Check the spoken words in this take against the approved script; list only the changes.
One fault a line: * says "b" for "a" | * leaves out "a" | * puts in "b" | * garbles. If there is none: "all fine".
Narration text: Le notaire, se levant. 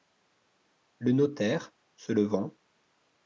all fine